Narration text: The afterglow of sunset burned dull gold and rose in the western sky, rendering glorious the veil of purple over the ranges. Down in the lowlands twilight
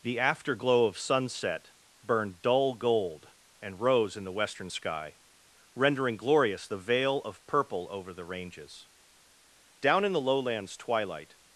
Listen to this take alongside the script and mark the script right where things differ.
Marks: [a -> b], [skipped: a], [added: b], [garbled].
The afterglow of sunset burned dull gold and rose in the western sky, rendering glorious the veil of purple over the ranges. Down in the lowlands twilight